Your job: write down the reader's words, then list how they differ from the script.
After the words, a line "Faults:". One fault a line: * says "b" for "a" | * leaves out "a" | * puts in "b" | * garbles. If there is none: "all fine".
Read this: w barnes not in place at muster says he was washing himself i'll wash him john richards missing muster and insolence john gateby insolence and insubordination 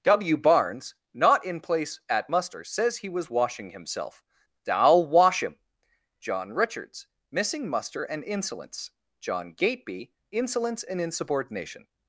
w barnes not in place at muster says he was washing himself i'll wash him john richards missing muster and insolence john gateby insolence and insubordination
Faults:
all fine